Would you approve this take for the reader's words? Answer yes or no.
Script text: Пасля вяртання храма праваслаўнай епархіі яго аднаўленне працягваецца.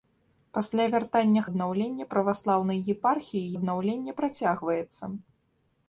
no